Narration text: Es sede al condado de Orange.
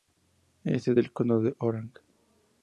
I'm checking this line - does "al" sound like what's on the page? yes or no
no